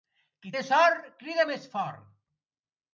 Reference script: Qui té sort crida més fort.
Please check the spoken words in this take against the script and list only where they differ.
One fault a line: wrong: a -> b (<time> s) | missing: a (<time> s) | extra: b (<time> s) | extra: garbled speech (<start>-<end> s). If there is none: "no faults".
no faults